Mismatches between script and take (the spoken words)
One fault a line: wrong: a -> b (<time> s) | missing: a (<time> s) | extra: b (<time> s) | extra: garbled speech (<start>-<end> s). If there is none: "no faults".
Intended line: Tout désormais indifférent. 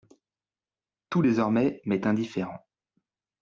extra: m'est (1.8 s)